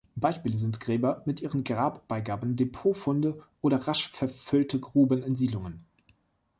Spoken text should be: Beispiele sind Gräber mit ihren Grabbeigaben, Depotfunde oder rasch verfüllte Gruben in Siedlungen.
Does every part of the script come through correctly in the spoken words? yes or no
yes